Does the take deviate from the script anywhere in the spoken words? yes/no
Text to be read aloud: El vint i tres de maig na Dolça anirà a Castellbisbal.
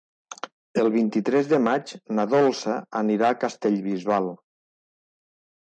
no